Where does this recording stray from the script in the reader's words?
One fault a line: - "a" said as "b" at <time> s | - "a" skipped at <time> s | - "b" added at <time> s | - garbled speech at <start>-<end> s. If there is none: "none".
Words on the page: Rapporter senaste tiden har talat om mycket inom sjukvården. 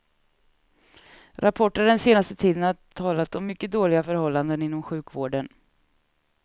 - "den" added at 1.9 s
- "dåliga förhållanden" added at 3.7 s